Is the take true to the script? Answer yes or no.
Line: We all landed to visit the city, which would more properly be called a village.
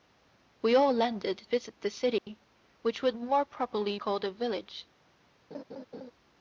no